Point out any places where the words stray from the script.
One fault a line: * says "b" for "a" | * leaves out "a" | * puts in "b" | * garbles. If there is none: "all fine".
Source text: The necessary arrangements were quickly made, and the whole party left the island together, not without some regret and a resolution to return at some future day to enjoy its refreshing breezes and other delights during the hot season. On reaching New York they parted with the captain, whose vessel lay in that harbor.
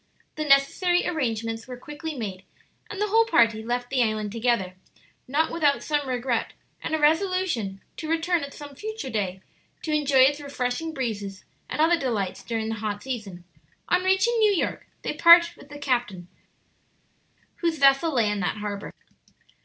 all fine